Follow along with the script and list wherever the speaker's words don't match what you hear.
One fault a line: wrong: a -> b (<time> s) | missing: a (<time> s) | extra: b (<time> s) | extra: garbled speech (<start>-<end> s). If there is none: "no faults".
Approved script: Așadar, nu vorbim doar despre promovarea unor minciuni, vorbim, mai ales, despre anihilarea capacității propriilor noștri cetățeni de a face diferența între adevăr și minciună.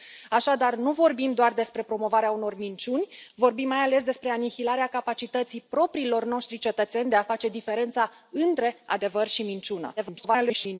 extra: garbled speech (10.0-10.8 s)